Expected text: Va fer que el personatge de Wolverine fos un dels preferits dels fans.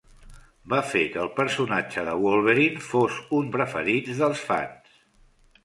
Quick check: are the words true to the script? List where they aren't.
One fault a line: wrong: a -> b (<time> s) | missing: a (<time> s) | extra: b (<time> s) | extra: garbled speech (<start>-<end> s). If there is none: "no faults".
missing: dels (3.5 s)